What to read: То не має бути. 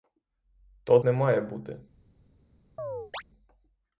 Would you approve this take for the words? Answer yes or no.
yes